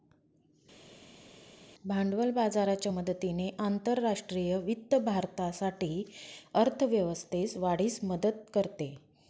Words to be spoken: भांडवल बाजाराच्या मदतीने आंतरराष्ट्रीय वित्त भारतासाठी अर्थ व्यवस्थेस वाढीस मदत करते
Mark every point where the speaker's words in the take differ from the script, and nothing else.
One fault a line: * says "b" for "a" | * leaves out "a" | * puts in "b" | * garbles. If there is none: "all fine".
all fine